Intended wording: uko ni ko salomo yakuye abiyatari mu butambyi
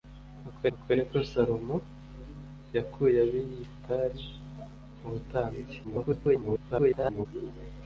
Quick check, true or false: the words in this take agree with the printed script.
false